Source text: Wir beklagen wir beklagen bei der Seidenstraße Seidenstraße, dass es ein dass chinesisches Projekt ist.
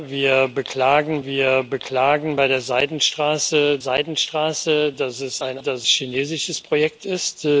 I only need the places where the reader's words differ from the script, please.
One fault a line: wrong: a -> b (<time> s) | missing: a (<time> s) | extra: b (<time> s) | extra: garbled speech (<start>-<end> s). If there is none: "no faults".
no faults